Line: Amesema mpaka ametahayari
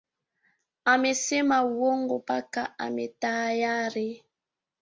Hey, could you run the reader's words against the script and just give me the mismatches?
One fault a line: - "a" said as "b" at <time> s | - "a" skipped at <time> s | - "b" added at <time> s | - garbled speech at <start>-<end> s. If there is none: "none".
- "uongo" added at 1.6 s